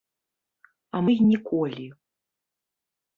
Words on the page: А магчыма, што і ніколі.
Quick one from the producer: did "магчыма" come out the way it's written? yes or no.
no